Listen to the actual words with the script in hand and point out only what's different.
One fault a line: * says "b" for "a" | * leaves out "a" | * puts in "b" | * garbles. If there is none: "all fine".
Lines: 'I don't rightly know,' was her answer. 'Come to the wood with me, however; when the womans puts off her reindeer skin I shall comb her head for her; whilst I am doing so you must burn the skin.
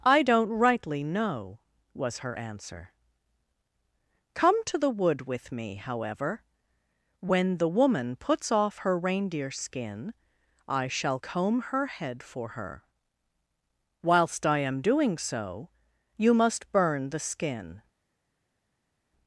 * says "woman" for "womans"